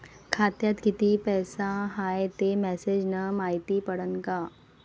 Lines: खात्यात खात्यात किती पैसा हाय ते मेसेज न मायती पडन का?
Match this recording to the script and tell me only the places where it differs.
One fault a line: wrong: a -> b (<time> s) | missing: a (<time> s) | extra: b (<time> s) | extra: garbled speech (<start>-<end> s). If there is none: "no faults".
missing: खात्यात (0.8 s)